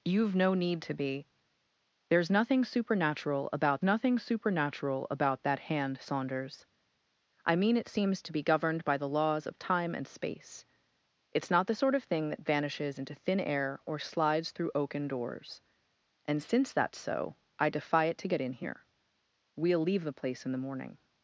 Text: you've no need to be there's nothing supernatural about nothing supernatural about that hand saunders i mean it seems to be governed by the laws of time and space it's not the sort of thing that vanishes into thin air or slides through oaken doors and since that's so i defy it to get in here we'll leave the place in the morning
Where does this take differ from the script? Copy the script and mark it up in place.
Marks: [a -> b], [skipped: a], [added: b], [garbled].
you've no need to be there's nothing supernatural about nothing supernatural about that hand saunders i mean it seems to be governed by the laws of time and space it's not the sort of thing that vanishes into thin air or slides through oaken doors and since that's so i defy it to get in here we'll leave the place in the morning